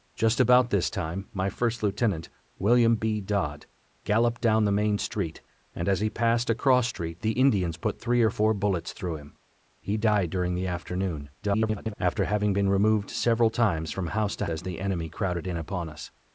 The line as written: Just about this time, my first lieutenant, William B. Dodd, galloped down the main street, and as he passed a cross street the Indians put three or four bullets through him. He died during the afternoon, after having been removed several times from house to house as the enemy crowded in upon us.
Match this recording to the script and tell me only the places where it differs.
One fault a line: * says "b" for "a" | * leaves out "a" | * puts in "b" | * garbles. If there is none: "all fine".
* garbles
* leaves out "house"